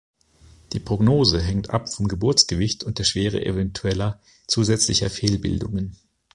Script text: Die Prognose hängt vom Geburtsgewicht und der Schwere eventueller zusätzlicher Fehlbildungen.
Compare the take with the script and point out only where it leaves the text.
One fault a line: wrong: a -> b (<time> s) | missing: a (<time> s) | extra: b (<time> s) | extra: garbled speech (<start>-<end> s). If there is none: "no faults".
extra: ab (1.7 s)